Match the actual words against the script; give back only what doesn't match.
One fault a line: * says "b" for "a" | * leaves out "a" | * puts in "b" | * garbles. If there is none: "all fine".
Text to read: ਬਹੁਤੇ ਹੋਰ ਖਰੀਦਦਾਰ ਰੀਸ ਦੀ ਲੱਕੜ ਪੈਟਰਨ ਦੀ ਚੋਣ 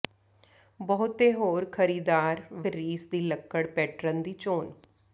all fine